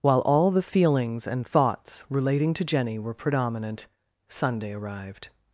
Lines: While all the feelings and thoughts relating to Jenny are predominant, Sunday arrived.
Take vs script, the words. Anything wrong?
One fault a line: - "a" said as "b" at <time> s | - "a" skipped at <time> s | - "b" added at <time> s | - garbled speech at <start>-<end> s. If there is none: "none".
- "are" said as "were" at 3.0 s